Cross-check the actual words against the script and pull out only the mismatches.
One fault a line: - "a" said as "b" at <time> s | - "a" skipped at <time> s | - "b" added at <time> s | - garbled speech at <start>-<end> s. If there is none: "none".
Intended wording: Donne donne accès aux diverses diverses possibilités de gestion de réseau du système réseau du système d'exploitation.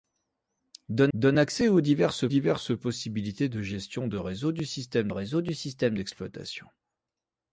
none